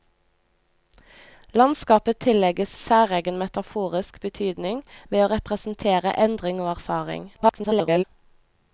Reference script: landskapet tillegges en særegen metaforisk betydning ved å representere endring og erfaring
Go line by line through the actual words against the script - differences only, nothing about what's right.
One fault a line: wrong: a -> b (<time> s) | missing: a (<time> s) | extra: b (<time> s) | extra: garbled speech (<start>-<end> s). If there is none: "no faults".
missing: en (2.8 s)
extra: garbled speech (7.3-8.0 s)